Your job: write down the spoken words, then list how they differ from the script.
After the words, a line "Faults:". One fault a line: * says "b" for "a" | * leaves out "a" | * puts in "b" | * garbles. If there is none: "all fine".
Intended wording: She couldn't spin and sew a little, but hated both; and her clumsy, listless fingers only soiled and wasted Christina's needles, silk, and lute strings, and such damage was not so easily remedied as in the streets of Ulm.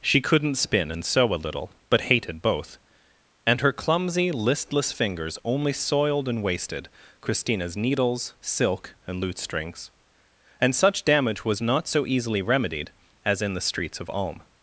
She couldn't spin and sew a little, but hated both; and her clumsy, listless fingers only soiled and wasted Christina's needles, silk, and lute strings, and such damage was not so easily remedied as in the streets of Ulm.
Faults:
all fine